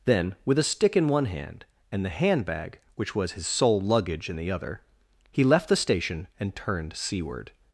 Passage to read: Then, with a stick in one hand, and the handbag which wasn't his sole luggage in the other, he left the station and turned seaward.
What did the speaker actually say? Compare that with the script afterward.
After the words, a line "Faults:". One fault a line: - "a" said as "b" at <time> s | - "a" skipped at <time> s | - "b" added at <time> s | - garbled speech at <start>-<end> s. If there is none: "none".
Then, with a stick in one hand, and the handbag which was his sole luggage in the other, he left the station and turned seaward.
Faults:
- "wasn't" said as "was" at 3.2 s